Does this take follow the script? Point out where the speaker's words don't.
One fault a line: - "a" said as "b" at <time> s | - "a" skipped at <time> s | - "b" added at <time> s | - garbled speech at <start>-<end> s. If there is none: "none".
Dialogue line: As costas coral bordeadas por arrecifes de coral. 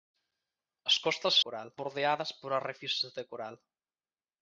none